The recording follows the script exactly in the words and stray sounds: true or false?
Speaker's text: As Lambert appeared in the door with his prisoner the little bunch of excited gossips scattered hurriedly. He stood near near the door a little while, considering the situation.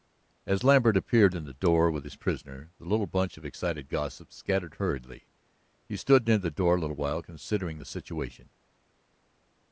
false